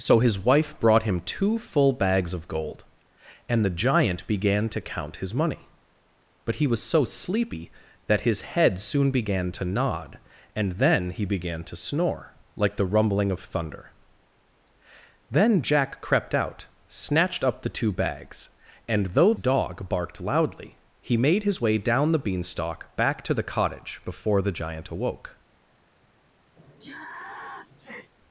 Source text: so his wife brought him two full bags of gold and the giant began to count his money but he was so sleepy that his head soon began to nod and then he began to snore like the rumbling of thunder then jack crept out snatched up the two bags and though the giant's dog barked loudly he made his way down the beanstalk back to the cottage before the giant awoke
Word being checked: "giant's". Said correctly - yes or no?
no